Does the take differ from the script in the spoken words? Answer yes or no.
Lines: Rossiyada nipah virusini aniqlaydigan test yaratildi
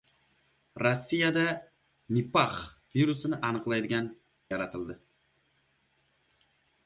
yes